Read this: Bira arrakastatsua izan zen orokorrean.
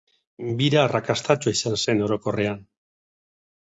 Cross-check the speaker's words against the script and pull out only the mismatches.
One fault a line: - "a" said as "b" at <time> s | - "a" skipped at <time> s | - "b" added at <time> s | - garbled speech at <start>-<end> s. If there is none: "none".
none